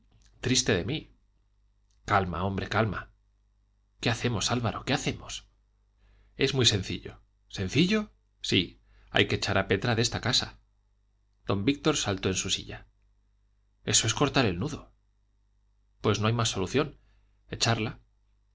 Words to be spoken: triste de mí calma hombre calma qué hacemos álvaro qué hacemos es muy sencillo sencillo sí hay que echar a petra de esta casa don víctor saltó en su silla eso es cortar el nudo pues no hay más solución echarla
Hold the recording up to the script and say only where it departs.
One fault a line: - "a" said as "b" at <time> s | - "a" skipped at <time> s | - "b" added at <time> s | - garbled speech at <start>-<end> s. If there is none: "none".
none